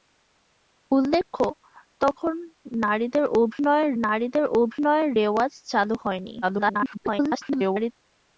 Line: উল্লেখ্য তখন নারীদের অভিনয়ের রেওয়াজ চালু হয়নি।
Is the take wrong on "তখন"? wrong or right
right